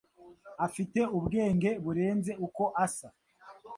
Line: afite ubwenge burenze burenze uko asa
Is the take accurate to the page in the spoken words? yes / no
no